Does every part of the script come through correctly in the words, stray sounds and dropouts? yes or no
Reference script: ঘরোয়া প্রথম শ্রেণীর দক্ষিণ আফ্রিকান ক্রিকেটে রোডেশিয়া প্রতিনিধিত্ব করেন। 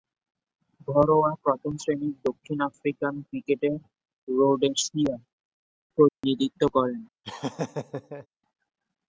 no